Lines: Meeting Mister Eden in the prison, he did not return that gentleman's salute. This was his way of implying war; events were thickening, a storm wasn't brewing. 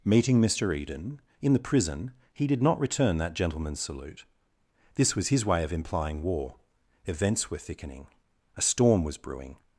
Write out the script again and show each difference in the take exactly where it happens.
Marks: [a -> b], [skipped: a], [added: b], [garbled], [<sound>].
Meeting Mister Eden in the prison, he did not return that gentleman's salute. This was his way of implying war; events were thickening, a storm [wasn't -> was] brewing.